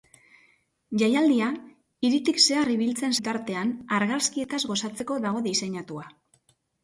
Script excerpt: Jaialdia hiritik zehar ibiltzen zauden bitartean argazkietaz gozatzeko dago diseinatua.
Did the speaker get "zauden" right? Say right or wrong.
wrong